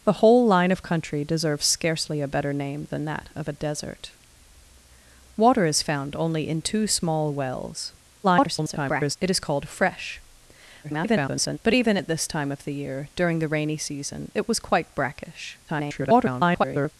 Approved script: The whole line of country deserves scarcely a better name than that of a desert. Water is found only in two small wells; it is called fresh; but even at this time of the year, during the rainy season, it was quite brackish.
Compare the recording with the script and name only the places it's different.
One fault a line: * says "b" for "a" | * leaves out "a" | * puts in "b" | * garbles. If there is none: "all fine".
* garbles
* garbles
* garbles